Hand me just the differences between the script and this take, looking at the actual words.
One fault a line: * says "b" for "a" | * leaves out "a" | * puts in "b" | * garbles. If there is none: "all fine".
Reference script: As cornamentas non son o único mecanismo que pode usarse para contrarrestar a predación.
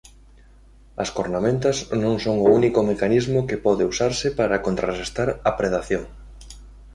all fine